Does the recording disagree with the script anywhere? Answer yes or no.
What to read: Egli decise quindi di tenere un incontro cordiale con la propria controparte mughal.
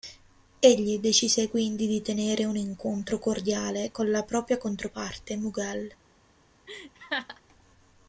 no